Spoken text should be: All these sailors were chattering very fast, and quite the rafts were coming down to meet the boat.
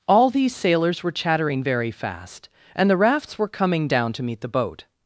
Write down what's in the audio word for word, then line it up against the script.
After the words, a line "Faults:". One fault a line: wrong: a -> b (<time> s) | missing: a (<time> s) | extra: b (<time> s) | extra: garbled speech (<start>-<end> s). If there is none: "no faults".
All these sailors were chattering very fast, and the rafts were coming down to meet the boat.
Faults:
missing: quite (2.9 s)